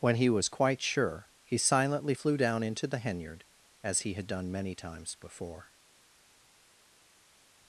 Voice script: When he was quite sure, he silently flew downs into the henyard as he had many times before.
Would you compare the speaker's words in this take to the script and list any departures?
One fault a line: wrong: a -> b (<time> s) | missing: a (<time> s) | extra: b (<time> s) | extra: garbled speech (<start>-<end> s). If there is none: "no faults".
wrong: downs -> down (2.4 s)
extra: done (4.3 s)